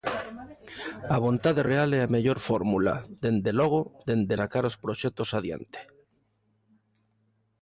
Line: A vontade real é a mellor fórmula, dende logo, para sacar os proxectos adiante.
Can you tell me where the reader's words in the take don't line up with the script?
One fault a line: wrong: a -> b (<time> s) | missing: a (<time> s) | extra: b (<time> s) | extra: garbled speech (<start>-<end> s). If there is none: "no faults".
wrong: para -> dende (4.1 s)